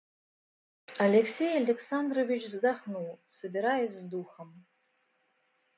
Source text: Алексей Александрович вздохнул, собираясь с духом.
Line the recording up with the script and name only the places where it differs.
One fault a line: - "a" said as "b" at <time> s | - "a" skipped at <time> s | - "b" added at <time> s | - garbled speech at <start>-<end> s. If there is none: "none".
none